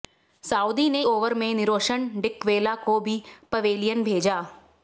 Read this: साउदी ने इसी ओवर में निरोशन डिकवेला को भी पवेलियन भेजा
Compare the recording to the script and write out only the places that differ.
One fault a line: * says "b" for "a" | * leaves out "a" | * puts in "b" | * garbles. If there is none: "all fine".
* leaves out "इसी"